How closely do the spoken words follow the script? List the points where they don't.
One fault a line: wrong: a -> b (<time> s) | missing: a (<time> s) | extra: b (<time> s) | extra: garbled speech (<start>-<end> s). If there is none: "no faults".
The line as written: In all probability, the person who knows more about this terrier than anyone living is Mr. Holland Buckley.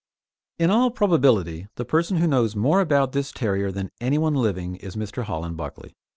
no faults